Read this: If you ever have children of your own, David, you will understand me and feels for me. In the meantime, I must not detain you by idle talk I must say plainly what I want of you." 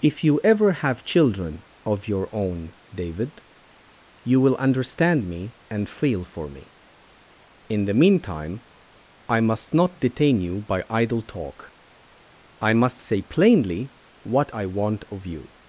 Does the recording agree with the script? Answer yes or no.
no